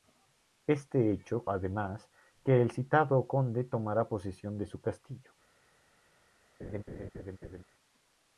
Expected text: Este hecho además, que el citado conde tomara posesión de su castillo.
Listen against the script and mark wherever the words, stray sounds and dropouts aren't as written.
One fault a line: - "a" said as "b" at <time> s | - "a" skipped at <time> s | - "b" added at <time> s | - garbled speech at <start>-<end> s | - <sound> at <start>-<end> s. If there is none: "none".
- laugh at 6.6-7.6 s